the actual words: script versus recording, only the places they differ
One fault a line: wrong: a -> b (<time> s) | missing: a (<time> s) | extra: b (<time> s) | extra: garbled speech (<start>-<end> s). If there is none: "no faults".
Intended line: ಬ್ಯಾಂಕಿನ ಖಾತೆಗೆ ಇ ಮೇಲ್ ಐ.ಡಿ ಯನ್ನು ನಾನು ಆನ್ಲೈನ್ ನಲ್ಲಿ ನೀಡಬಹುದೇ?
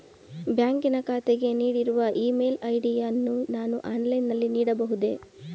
extra: ನೀಡಿರುವ (1.5 s)